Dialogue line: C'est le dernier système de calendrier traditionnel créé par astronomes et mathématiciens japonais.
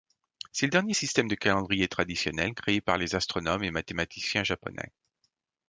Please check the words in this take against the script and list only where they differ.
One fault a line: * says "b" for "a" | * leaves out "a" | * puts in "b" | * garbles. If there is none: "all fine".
* puts in "les"